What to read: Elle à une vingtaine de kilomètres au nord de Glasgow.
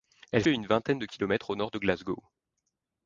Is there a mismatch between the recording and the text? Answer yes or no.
no